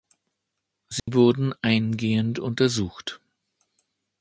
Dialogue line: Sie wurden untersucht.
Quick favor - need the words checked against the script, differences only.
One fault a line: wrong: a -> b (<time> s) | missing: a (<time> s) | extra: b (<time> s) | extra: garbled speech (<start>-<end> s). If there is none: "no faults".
extra: eingehend (1.6 s)